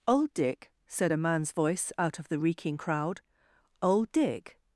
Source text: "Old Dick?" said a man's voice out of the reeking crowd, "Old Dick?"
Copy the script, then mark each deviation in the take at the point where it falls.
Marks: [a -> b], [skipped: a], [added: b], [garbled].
"Old Dick?" said a man's voice out of the reeking crowd, "Old Dick?"